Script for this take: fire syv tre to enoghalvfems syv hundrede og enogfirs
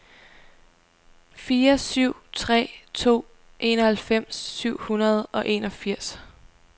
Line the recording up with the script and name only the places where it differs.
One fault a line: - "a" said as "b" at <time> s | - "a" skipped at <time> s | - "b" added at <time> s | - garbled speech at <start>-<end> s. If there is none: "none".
none